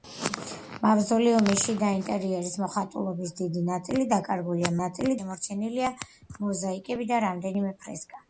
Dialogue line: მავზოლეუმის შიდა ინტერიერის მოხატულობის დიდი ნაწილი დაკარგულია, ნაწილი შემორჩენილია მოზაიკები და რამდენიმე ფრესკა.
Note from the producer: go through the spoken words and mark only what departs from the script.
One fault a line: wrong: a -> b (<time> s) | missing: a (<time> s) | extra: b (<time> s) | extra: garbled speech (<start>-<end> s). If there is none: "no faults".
no faults